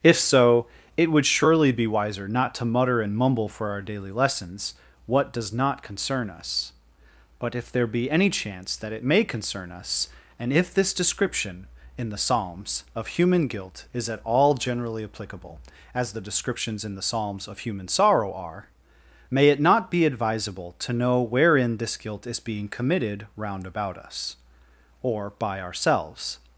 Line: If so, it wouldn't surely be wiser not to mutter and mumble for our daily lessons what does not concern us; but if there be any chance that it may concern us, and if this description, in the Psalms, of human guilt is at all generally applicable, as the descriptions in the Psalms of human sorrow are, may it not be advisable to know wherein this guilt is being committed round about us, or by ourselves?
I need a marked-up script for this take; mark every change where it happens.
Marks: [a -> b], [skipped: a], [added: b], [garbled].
If so, it [wouldn't -> would] surely be wiser not to mutter and mumble for our daily lessons what does not concern us; but if there be any chance that it may concern us, and if this description, in the Psalms, of human guilt is at all generally applicable, as the descriptions in the Psalms of human sorrow are, may it not be advisable to know wherein this guilt is being committed round about us, or by ourselves?